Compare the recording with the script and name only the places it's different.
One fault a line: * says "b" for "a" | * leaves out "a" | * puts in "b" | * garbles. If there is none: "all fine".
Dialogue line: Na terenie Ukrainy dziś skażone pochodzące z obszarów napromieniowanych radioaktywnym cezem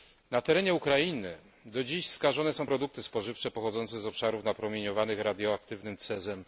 * puts in "do"
* puts in "są produkty spożywcze"